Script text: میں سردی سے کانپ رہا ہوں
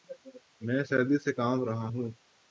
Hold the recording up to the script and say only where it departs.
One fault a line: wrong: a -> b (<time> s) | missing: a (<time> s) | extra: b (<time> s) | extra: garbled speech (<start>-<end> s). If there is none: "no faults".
no faults